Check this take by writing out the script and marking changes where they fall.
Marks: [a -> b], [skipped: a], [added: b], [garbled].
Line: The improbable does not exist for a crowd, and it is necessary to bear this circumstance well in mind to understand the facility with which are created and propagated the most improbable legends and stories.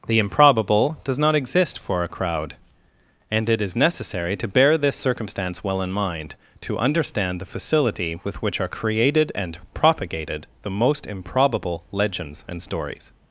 The improbable does not exist for a crowd, and it is necessary to bear this circumstance well in mind to understand the facility with which are created and propagated the most improbable legends and stories.